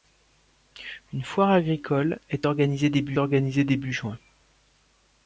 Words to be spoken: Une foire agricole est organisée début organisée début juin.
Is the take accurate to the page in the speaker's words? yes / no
yes